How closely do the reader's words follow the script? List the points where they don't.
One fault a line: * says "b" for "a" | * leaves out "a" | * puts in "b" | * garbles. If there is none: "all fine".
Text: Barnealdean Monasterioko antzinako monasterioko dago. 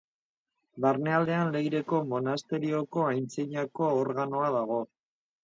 * puts in "Leireko"
* says "organoa" for "monasterioko"